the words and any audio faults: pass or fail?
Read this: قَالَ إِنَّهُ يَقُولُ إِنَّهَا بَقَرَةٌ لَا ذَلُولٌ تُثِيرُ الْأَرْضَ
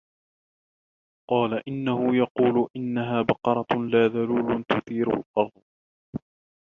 pass